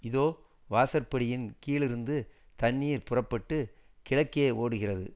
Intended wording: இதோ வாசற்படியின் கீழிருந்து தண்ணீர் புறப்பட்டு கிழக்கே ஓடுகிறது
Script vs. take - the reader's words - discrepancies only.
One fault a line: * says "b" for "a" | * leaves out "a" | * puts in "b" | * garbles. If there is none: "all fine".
all fine